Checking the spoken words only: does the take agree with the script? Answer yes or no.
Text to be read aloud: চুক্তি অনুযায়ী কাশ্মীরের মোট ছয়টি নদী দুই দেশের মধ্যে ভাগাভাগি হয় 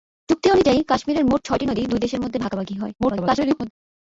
no